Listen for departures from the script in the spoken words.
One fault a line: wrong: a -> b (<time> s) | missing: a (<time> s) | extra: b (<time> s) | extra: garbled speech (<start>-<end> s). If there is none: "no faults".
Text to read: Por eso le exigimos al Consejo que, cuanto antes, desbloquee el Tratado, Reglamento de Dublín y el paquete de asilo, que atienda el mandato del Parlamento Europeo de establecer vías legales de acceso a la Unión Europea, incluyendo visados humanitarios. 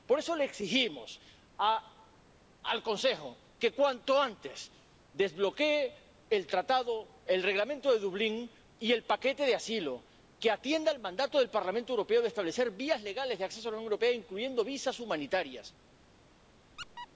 extra: el (7.2 s)